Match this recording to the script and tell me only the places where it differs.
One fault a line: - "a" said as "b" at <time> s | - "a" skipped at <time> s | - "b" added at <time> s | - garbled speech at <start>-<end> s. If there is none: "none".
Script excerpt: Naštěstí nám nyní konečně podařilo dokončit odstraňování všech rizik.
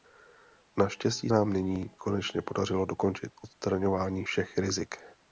none